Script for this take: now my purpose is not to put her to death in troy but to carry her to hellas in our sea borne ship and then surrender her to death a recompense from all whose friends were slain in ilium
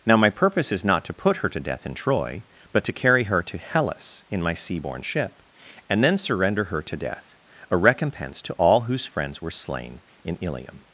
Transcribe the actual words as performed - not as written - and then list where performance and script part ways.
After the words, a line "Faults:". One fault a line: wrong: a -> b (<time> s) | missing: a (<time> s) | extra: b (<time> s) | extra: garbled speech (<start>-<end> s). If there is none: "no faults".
now my purpose is not to put her to death in troy but to carry her to hellas in my sea borne ship and then surrender her to death a recompense to all whose friends were slain in ilium
Faults:
wrong: our -> my (4.4 s)
wrong: from -> to (8.4 s)